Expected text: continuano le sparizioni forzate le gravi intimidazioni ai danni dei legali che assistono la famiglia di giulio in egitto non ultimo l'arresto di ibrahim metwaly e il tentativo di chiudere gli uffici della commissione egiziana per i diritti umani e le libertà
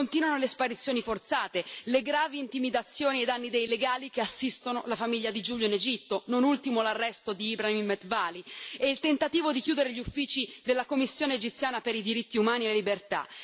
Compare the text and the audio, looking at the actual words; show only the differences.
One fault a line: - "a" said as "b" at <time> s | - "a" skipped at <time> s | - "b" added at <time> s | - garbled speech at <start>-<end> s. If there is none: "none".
none